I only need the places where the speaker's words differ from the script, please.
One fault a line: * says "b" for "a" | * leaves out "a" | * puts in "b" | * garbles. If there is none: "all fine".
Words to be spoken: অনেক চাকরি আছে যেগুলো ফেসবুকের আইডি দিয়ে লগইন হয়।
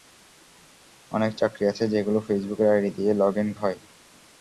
all fine